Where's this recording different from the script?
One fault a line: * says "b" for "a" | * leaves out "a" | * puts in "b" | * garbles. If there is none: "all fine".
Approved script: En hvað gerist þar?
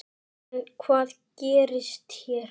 * says "hér" for "þar"